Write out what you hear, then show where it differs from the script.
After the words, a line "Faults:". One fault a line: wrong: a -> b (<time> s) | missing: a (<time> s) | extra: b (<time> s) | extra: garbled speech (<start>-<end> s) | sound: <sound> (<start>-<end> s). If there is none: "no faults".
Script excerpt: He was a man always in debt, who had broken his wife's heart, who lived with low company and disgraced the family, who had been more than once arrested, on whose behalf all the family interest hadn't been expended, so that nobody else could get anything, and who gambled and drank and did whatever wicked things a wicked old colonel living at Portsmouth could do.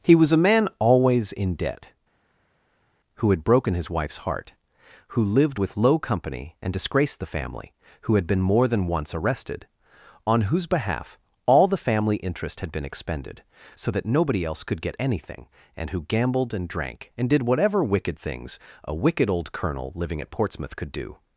He was a man always in debt, who had broken his wife's heart, who lived with low company and disgraced the family, who had been more than once arrested, on whose behalf all the family interest had been expended, so that nobody else could get anything, and who gambled and drank and did whatever wicked things a wicked old colonel living at Portsmouth could do.
Faults:
wrong: hadn't -> had (12.6 s)